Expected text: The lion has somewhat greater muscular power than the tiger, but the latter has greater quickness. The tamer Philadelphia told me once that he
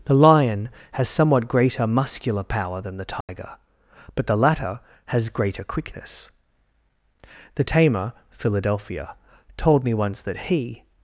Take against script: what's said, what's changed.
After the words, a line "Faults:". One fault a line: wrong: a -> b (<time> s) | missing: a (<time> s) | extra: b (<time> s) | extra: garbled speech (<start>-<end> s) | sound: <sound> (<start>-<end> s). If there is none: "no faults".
The lion has somewhat greater muscular power than the tiger, but the latter has greater quickness. The tamer Philadelphia told me once that he
Faults:
sound: dropout (3.2-3.3 s)